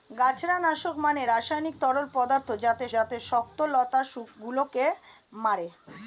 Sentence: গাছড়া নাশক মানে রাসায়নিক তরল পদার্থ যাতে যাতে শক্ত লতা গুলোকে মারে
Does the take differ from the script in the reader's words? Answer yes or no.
no